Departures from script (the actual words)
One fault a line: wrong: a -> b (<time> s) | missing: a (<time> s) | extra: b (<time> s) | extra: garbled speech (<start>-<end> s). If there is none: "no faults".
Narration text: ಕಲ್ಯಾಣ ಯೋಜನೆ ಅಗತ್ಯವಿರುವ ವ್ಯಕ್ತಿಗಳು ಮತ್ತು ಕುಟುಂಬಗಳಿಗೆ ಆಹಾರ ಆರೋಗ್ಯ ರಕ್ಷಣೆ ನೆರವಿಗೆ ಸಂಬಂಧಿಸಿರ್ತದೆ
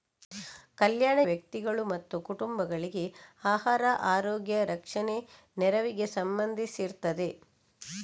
missing: ಯೋಜನೆ ಅಗತ್ಯವಿರುವ (1.2 s)